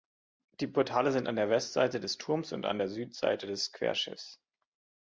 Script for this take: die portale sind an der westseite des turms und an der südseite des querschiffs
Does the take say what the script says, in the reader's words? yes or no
yes